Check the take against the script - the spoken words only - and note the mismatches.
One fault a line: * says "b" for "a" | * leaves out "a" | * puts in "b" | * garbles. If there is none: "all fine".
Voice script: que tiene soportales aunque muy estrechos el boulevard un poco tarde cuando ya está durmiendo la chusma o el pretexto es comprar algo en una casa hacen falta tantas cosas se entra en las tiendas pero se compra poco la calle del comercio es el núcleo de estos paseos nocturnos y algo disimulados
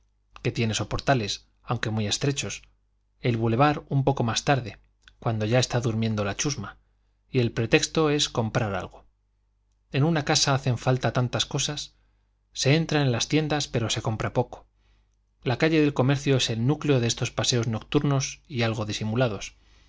* puts in "más"
* says "y" for "o"